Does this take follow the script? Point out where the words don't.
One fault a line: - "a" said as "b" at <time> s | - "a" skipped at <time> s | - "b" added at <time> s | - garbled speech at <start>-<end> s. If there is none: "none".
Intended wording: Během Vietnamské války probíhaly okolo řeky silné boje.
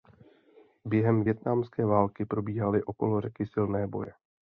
none